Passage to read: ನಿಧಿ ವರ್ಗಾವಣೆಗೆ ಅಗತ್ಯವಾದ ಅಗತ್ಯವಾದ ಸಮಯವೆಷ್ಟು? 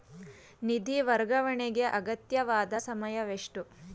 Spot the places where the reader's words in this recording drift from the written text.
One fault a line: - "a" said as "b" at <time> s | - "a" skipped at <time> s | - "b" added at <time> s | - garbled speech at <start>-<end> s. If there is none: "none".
- "ಅಗತ್ಯವಾದ" skipped at 2.7 s